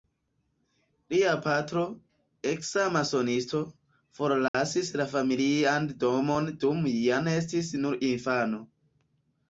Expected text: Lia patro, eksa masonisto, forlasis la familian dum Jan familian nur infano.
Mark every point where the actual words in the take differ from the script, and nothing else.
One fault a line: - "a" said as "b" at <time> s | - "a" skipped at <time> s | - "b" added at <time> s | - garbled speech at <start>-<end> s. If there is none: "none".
- "domon" added at 6.0 s
- "familian" said as "estis" at 7.4 s